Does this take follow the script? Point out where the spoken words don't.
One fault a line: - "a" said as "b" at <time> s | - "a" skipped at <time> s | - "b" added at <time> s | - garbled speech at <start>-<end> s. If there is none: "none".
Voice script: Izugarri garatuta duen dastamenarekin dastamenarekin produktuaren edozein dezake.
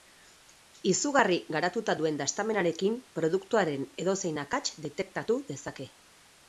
- "dastamenarekin" skipped at 3.0 s
- "akats detektatu" added at 4.5 s